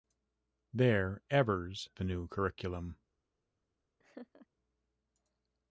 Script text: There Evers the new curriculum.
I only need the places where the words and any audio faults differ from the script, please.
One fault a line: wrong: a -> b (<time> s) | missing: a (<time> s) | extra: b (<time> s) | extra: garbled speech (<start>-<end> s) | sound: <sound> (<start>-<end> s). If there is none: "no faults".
sound: laugh (4.0-4.5 s)